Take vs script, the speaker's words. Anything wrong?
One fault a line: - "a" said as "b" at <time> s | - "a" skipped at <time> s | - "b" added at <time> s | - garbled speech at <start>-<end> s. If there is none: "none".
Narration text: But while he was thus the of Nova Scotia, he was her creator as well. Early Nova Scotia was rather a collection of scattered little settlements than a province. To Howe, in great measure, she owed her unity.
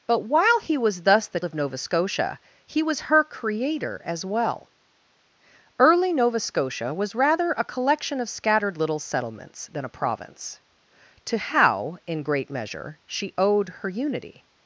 none